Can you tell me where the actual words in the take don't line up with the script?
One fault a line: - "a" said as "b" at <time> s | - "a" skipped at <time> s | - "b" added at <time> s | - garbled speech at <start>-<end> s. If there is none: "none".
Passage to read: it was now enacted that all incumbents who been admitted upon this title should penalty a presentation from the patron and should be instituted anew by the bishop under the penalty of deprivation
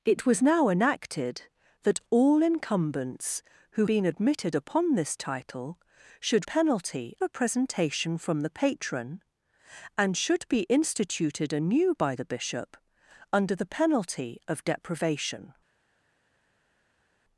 none